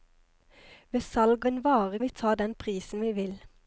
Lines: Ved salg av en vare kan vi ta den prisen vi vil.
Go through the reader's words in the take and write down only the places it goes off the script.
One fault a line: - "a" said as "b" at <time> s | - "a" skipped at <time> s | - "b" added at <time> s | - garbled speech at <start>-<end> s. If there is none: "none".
- "av" skipped at 1.4 s
- "kan" skipped at 2.0 s